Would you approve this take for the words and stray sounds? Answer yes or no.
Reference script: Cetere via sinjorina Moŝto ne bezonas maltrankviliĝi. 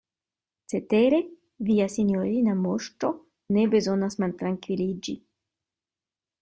yes